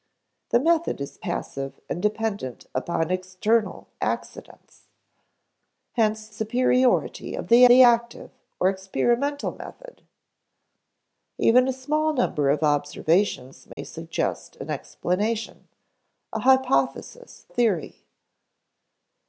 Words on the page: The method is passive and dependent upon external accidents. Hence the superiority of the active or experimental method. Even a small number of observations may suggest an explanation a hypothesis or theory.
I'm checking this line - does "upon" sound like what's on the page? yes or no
yes